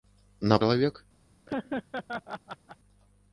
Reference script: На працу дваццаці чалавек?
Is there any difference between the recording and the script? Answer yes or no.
yes